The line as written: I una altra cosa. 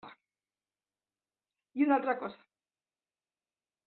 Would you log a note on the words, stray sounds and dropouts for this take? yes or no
no